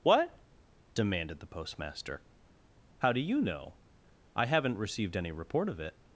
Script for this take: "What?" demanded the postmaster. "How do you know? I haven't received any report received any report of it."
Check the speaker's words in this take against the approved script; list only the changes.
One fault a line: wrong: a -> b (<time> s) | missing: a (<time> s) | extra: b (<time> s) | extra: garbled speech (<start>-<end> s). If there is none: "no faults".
missing: received any report (5.7 s)